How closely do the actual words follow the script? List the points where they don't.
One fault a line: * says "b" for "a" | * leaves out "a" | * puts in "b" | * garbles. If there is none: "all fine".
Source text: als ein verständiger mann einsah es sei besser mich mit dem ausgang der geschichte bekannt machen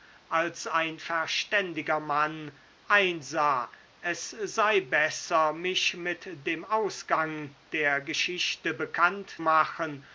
all fine